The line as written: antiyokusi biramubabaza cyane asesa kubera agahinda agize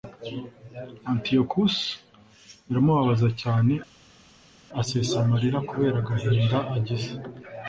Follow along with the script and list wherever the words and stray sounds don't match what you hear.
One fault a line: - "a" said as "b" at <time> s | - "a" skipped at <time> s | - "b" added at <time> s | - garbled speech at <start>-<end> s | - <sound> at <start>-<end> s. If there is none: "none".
- "amarira" added at 5.2 s